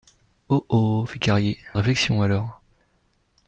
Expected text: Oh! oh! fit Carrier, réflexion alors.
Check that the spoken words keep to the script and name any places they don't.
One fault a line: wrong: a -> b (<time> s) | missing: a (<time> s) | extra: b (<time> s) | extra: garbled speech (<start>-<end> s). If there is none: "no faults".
no faults